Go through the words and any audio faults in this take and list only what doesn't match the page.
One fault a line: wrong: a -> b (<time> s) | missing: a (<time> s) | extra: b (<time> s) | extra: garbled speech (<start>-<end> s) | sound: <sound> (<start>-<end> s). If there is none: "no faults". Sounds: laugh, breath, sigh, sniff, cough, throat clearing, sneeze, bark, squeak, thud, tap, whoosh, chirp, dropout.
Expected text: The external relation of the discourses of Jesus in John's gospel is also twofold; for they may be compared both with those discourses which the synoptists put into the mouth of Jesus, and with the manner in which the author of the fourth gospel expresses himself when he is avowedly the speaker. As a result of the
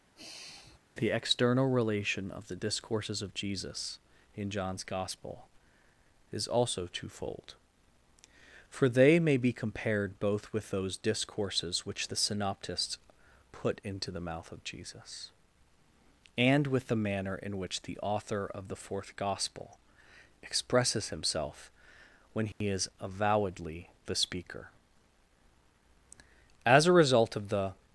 sound: sigh (0.2-0.8 s)
sound: dropout (22.5-22.6 s)